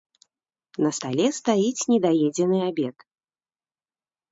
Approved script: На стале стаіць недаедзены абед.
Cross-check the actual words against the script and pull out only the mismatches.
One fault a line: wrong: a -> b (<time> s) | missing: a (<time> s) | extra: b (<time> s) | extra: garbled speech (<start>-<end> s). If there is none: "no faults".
no faults